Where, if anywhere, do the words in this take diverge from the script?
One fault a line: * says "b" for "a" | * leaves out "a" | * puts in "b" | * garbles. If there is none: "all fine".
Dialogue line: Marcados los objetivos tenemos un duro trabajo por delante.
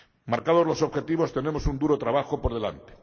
all fine